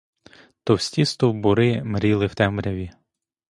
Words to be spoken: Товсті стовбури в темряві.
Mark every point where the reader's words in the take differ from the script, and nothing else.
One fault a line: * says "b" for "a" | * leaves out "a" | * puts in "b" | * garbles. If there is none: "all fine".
* puts in "мріли"